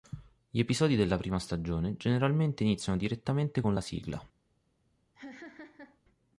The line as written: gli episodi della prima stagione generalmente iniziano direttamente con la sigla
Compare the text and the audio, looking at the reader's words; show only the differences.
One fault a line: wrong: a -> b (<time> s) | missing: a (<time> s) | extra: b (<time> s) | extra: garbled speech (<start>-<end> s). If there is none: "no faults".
no faults